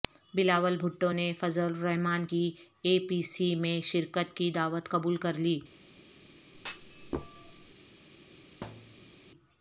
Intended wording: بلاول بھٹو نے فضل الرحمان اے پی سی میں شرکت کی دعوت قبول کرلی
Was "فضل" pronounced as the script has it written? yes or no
yes